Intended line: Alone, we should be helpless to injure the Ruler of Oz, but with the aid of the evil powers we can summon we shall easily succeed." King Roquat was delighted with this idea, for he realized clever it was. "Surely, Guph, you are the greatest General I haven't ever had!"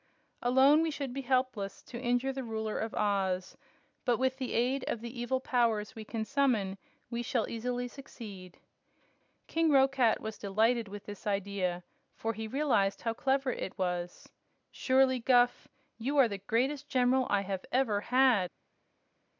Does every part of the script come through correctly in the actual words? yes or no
no